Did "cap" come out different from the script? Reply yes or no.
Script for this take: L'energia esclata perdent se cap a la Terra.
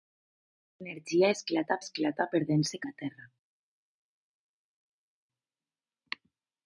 yes